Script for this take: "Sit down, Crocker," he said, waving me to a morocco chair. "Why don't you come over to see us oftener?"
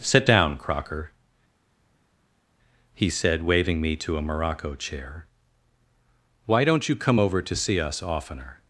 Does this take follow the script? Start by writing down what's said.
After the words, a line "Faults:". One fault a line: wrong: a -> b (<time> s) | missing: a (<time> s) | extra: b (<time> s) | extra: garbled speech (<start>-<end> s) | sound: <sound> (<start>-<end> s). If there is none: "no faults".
"Sit down, Crocker," he said, waving me to a morocco chair. "Why don't you come over to see us oftener?"
Faults:
no faults